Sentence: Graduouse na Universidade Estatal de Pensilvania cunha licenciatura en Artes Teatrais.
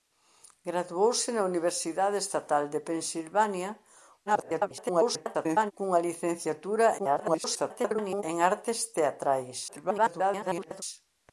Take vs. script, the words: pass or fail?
fail